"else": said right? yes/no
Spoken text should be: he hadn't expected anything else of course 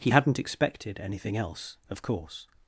yes